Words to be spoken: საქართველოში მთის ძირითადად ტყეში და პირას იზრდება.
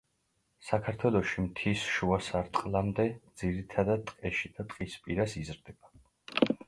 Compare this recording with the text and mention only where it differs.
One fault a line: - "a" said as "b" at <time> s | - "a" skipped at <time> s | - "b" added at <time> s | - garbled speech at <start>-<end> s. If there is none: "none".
- "შუა სარტყლამდე" added at 2.0 s
- "ტყის" added at 4.7 s